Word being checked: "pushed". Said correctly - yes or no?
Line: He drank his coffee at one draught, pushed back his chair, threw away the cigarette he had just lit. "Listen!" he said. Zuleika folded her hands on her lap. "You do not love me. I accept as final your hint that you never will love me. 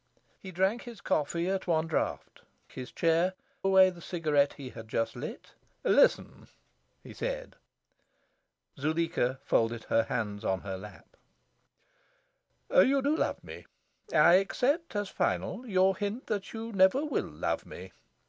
no